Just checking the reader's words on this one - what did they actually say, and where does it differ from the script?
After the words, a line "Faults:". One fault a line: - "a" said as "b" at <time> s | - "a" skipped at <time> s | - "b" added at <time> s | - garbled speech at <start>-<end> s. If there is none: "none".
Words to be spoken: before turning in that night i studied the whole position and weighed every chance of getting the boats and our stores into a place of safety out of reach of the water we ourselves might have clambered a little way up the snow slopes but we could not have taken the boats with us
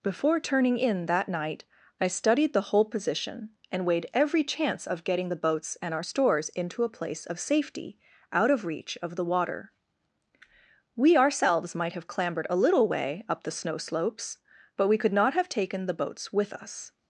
before turning in that night i studied the whole position and weighed every chance of getting the boats and our stores into a place of safety out of reach of the water we ourselves might have clambered a little way up the snow slopes but we could not have taken the boats with us
Faults:
none